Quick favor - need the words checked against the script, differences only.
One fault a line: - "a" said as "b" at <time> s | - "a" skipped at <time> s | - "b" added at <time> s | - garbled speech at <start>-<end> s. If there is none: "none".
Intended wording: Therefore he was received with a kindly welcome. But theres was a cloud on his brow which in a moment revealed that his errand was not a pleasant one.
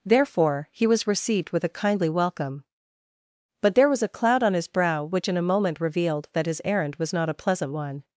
- "theres" said as "there" at 3.8 s